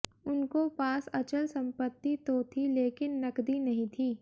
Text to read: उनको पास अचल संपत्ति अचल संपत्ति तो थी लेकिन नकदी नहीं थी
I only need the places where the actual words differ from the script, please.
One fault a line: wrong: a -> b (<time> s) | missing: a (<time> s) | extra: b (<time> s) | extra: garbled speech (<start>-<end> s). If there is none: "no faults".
missing: अचल संपत्ति (2.1 s)